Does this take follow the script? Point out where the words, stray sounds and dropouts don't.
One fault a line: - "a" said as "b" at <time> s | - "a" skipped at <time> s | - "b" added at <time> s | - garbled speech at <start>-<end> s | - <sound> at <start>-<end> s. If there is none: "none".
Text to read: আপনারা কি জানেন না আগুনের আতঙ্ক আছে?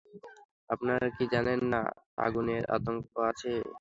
none